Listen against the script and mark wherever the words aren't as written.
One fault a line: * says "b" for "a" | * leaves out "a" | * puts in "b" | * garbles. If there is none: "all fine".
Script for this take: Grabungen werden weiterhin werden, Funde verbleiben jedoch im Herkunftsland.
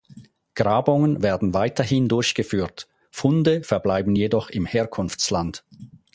* says "durchgeführt" for "werden"